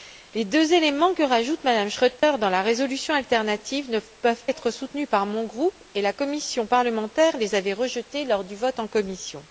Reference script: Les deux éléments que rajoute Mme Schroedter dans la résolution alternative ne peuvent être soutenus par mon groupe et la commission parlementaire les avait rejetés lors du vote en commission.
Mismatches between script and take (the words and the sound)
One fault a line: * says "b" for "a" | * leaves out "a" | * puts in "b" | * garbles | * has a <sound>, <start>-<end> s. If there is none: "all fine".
* has a dropout, 2.2-2.2 s